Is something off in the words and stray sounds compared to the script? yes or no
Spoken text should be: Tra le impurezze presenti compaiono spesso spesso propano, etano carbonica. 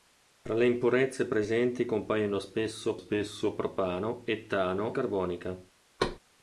yes